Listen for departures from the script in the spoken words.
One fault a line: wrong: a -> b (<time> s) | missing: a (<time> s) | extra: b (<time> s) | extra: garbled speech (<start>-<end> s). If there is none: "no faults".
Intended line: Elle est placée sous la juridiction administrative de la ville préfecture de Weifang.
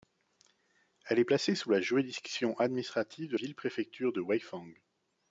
missing: la (3.4 s)